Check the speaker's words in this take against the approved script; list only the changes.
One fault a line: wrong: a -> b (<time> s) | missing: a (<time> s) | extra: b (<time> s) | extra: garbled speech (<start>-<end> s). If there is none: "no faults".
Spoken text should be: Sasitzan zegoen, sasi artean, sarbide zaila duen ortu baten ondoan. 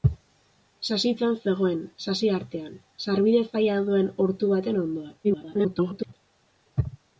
extra: garbled speech (5.2-6.1 s)